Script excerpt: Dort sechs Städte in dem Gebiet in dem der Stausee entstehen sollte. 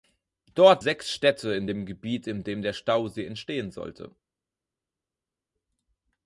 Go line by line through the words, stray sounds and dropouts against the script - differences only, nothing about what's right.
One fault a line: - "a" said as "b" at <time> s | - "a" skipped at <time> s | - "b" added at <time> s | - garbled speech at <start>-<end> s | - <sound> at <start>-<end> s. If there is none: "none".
none